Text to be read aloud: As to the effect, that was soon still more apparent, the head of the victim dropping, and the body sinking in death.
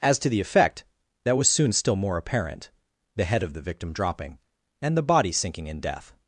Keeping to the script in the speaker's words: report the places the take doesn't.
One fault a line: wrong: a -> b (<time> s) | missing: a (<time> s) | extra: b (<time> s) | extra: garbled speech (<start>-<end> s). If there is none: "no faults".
no faults